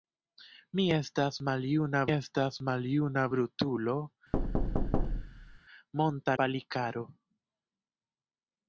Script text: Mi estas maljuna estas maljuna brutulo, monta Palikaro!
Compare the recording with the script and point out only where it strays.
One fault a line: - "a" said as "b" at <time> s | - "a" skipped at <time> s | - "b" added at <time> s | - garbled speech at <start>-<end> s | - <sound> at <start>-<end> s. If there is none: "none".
- thud at 4.3-5.6 s